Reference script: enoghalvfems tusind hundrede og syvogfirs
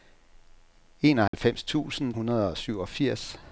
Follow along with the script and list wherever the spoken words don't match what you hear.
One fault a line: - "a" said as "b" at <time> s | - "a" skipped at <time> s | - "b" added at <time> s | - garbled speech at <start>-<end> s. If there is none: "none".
none